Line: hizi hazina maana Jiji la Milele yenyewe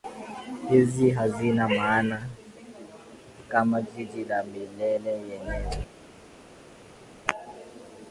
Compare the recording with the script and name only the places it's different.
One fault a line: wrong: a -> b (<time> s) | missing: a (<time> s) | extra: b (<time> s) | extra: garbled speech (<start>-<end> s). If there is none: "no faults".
extra: kama (3.5 s)